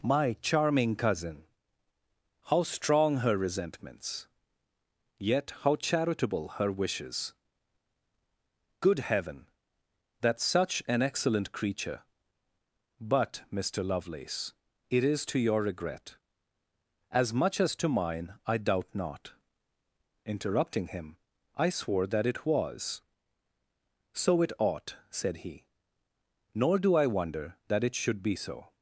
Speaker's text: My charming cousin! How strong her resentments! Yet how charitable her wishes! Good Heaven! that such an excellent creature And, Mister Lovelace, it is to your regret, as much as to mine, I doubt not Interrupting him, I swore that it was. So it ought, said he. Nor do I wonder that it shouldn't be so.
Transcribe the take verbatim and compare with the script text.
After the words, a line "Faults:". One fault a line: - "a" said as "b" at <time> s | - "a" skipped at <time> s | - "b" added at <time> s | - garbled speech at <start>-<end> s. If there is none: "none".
My charming cousin! How strong her resentments! Yet how charitable her wishes! Good Heaven! that such an excellent creature But, Mister Lovelace, it is to your regret, as much as to mine, I doubt not Interrupting him, I swore that it was. So it ought, said he. Nor do I wonder that it should be so.
Faults:
- "And" said as "But" at 13.0 s
- "shouldn't" said as "should" at 27.9 s